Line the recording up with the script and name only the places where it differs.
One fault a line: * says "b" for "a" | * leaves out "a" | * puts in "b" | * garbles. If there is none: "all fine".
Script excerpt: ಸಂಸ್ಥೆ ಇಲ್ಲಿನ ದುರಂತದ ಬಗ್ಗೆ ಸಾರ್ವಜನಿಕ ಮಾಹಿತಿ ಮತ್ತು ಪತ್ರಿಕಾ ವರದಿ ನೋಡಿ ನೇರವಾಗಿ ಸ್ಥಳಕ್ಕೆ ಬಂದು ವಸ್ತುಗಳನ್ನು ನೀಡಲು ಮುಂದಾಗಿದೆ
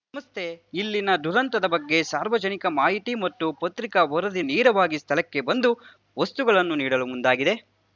* leaves out "ನೋಡಿ"